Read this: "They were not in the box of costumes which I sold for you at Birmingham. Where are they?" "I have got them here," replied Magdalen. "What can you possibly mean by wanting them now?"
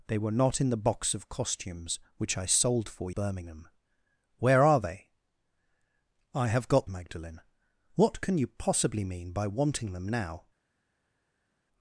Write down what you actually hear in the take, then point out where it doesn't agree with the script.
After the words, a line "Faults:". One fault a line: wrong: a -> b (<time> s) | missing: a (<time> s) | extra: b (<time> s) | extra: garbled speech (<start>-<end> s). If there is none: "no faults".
"They were not in the box of costumes which I sold for Birmingham. Where are they?" "I have got Magdalen. "What can you possibly mean by wanting them now?"
Faults:
missing: you at (3.1 s)
missing: them here replied (6.9 s)